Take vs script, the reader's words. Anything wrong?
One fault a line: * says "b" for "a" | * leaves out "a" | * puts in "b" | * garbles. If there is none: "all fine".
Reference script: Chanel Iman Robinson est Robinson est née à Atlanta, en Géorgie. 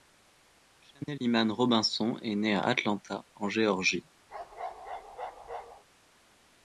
* leaves out "Robinson est"